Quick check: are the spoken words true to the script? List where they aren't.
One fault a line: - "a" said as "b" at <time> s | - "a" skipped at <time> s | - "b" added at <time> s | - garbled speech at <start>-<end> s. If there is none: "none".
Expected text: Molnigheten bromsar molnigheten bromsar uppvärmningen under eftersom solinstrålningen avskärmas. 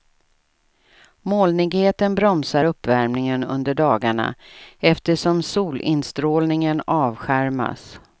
- "molnigheten bromsar" skipped at 2.6 s
- "dagarna" added at 3.7 s